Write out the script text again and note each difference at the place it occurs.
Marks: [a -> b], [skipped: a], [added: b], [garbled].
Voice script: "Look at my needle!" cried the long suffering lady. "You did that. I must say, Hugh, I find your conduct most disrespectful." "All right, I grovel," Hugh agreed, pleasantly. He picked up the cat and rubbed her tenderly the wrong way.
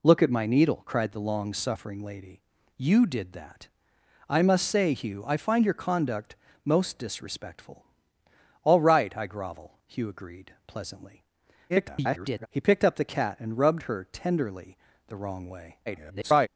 "Look at my needle!" cried the long suffering lady. "You did that. I must say, Hugh, I find your conduct most disrespectful." "All right, I grovel," Hugh agreed, pleasantly. [garbled] He picked up the cat and rubbed her tenderly the wrong way. [garbled]